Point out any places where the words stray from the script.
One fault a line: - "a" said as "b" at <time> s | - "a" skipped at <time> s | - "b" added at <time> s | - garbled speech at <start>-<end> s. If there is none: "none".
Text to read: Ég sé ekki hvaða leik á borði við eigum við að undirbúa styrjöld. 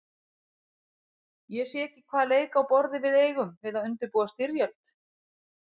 none